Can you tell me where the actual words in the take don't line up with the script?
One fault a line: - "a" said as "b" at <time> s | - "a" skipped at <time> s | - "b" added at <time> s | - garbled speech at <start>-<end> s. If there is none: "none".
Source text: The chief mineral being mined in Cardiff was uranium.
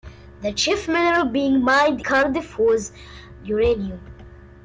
- "in" skipped at 2.0 s